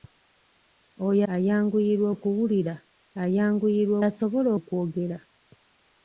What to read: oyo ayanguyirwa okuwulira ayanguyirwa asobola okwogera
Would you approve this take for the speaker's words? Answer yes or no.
yes